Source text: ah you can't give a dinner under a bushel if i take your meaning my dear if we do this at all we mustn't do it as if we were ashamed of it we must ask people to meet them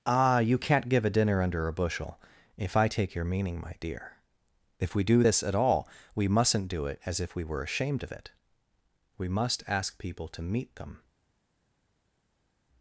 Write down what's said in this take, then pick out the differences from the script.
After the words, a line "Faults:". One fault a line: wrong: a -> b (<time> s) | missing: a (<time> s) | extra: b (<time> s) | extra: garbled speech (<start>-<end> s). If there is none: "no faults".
ah you can't give a dinner under a bushel if i take your meaning my dear if we do this at all we mustn't do it as if we were ashamed of it we must ask people to meet them
Faults:
no faults